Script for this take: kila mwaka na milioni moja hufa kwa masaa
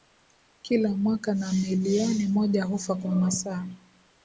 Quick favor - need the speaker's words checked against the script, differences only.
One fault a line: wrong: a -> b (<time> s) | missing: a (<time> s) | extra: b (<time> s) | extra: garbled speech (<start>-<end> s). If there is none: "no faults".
no faults